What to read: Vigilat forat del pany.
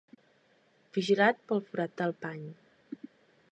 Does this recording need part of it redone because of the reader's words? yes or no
yes